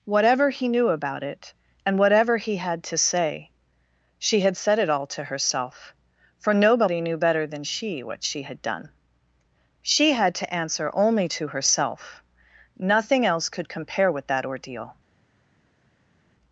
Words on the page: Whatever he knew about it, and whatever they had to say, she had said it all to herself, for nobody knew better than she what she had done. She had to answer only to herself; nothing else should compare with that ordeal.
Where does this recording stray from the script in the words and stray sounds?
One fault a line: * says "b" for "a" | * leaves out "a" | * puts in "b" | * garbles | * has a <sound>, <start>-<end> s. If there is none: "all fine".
* says "he" for "they"
* says "could" for "should"